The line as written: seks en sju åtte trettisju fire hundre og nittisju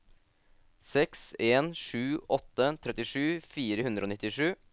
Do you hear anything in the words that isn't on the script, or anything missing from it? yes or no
no